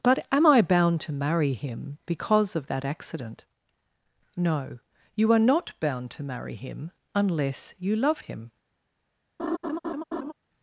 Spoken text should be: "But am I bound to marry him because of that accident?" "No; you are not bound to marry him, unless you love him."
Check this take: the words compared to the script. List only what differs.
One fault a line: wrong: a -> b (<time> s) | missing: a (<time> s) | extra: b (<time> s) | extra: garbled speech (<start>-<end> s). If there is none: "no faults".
no faults